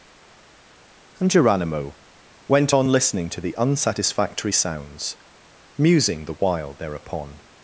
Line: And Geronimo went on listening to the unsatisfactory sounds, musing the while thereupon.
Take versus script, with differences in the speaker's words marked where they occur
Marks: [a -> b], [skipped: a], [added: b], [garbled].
And Geronimo went on listening to the unsatisfactory sounds, musing the while thereupon.